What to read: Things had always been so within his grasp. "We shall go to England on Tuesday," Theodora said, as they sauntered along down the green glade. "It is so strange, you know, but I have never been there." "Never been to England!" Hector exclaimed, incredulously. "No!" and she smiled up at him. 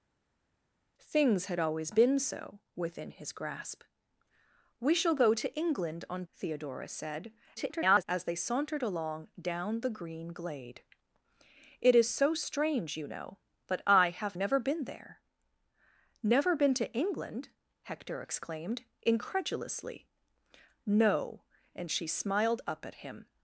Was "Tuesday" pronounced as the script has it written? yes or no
no